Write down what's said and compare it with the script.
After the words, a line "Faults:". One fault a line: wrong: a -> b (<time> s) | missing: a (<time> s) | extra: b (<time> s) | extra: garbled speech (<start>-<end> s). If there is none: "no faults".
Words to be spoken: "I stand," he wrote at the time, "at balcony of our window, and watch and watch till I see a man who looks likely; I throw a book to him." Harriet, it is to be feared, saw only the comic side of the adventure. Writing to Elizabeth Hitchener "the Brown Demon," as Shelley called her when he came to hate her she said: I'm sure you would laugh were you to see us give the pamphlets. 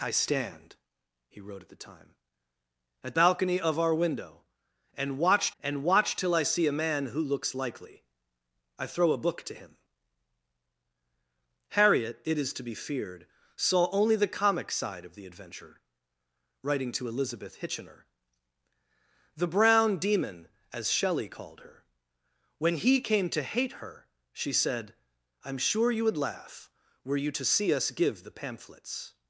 "I stand," he wrote at the time, "at balcony of our window, and watch and watch till I see a man who looks likely; I throw a book to him." Harriet, it is to be feared, saw only the comic side of the adventure. Writing to Elizabeth Hitchener "the Brown Demon," as Shelley called her when he came to hate her she said: I'm sure you would laugh were you to see us give the pamphlets.
Faults:
no faults